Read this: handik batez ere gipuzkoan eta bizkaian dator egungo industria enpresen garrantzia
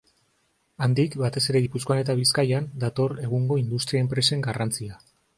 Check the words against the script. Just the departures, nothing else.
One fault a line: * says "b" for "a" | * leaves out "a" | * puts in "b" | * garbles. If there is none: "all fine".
all fine